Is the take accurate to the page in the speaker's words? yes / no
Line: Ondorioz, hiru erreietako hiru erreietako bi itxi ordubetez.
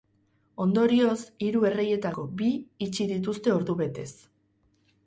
no